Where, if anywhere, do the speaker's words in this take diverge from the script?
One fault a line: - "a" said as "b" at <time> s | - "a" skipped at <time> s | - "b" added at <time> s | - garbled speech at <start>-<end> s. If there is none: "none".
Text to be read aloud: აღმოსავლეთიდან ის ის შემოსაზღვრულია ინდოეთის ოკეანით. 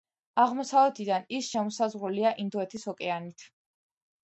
- "ის" skipped at 1.5 s